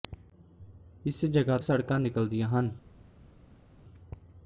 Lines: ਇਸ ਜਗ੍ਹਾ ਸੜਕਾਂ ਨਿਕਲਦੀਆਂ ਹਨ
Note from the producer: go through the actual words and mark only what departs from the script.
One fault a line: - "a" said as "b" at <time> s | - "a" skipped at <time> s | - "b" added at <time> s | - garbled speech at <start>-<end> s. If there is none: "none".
none